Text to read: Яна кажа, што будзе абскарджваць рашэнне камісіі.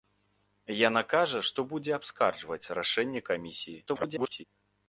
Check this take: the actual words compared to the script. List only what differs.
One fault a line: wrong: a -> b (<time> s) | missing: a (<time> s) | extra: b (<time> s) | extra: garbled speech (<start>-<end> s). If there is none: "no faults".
extra: garbled speech (3.9-4.4 s)